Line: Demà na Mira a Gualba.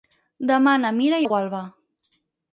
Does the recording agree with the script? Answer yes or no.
yes